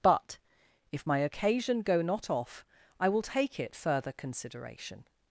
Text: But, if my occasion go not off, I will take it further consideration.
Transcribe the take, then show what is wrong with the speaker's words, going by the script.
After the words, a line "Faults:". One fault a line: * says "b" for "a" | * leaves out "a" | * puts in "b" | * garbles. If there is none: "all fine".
But, if my occasion go not off, I will take it further consideration.
Faults:
all fine